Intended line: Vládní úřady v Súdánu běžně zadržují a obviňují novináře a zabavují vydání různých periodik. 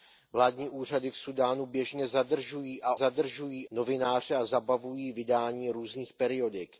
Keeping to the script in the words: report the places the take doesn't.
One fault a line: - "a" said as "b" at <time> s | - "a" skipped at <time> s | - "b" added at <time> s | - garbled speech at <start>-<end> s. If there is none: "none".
- "obviňují" said as "zadržují" at 2.9 s